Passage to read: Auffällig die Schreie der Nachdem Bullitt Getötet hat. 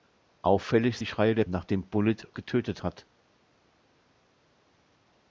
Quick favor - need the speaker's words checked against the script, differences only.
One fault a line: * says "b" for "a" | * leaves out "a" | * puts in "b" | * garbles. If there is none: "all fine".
all fine